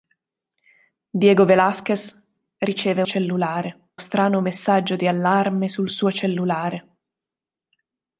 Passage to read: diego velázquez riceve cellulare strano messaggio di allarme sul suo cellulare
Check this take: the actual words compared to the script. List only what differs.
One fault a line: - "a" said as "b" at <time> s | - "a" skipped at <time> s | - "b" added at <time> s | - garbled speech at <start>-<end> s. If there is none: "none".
none